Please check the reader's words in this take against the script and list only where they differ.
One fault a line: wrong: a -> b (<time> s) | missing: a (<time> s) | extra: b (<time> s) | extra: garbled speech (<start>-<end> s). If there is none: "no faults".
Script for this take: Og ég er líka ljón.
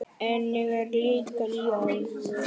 wrong: Og -> En (0.3 s)